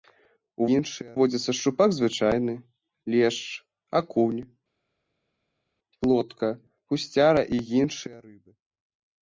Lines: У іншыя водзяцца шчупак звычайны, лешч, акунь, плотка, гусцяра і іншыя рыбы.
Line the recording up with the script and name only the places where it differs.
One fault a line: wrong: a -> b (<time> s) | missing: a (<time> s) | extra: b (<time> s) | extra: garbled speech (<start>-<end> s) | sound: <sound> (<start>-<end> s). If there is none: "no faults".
no faults